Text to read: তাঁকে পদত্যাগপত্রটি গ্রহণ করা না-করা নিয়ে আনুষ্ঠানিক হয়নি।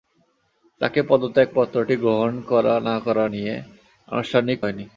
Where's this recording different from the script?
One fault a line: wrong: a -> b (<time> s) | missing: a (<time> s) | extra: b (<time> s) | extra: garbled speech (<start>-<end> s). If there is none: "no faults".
no faults